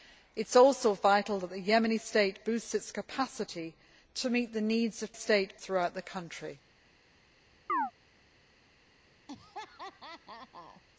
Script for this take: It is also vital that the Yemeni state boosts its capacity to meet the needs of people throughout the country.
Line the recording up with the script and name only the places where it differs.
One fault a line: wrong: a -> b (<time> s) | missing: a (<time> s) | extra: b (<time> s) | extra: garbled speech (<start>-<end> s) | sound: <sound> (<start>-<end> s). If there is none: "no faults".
wrong: people -> state (5.2 s)
sound: chirp (7.7-7.9 s)
sound: laugh (9.3-10.8 s)